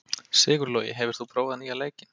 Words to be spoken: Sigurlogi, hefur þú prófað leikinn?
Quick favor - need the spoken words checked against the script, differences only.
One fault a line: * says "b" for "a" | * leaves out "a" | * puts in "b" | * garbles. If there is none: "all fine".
* puts in "nýja"